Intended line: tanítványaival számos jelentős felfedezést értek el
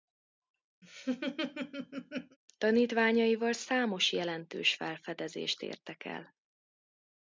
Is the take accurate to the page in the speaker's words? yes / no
yes